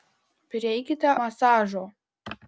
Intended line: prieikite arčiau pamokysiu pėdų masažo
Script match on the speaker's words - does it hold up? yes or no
no